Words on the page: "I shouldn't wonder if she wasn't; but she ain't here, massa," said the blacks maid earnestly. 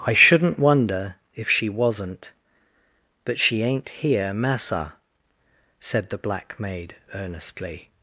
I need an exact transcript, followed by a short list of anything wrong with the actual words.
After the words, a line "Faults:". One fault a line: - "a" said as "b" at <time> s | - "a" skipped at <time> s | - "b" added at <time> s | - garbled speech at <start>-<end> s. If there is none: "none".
"I shouldn't wonder if she wasn't; but she ain't here, massa," said the black maid earnestly.
Faults:
- "blacks" said as "black" at 6.2 s